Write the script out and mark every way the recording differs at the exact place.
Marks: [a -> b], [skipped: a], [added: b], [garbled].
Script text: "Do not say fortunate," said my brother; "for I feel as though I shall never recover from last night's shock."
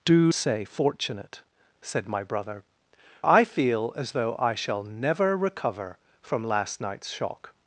"Do [skipped: not] say fortunate," said my brother; [skipped: "for] I feel as though I shall never recover from last night's shock."